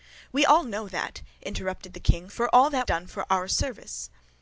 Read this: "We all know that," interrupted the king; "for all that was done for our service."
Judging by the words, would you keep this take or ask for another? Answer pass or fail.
fail